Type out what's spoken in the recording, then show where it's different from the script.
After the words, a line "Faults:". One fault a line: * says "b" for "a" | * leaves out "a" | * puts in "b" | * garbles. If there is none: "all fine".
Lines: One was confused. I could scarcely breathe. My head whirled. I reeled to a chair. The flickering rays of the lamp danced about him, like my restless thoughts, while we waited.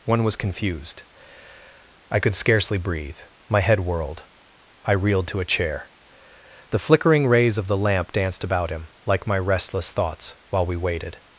One was confused. I could scarcely breathe. My head whirled. I reeled to a chair. The flickering rays of the lamp danced about him, like my restless thoughts, while we waited.
Faults:
all fine